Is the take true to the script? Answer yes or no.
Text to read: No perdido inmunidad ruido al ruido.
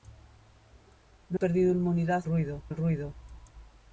yes